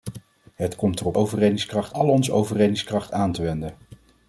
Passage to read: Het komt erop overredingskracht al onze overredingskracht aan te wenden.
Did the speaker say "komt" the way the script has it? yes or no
yes